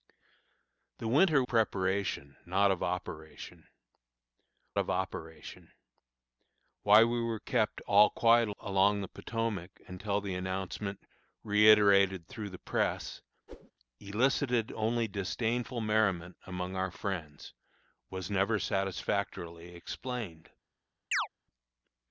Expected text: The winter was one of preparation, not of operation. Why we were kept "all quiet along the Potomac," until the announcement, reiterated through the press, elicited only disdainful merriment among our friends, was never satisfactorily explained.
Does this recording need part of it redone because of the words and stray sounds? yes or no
yes